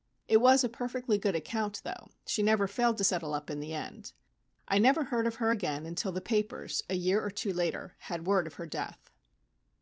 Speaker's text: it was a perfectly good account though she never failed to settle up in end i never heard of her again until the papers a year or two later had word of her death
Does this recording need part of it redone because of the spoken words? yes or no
yes